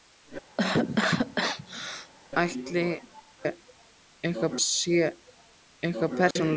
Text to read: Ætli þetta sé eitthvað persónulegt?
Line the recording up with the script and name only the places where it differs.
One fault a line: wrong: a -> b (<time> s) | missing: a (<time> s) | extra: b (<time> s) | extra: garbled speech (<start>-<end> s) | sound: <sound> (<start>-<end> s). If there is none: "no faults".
sound: cough (0.6-2.1 s)
wrong: þetta -> eitthvað (3.5 s)
sound: dropout (6.3-6.4 s)